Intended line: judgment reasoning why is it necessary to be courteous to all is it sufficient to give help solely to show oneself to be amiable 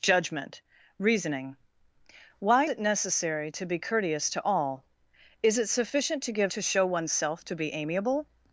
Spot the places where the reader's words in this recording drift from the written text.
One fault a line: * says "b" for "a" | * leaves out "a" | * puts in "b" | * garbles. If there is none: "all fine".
* leaves out "is"
* leaves out "help solely"